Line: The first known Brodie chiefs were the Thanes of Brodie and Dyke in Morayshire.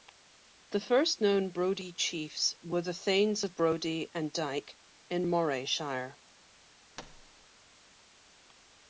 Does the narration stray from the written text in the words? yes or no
no